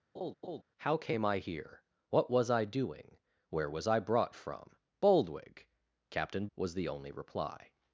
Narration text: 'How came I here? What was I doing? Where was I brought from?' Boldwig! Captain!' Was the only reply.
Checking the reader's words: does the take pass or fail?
pass